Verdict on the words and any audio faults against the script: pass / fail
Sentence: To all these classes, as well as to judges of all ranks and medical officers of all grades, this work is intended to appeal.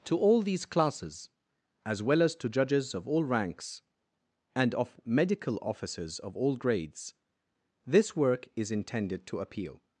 fail